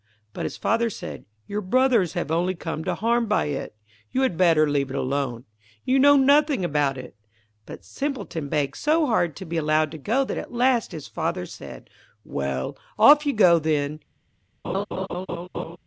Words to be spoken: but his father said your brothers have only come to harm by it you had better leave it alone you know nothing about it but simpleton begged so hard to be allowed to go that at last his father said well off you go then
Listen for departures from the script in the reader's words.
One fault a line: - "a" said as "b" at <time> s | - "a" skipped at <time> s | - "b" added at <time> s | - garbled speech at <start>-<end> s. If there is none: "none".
none